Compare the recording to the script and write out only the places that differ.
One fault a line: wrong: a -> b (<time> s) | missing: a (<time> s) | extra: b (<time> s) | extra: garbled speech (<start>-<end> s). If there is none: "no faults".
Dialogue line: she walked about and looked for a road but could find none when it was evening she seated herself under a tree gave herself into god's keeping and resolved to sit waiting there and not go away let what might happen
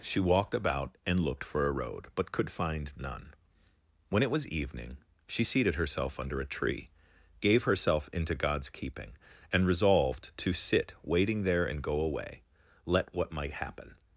missing: not (11.8 s)